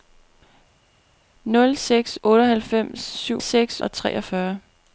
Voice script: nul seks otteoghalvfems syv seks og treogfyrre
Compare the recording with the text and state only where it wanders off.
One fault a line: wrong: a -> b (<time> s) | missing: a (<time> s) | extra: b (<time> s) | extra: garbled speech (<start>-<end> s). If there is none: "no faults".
no faults